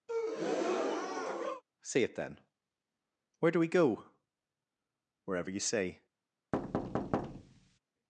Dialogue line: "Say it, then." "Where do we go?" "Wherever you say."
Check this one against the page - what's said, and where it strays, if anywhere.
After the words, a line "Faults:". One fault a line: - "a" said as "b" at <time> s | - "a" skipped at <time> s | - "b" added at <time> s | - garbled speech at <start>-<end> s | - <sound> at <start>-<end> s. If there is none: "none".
"Say it, then." "Where do we go?" "Wherever you say."
Faults:
- breath at 0.1-1.6 s
- thud at 6.5-7.8 s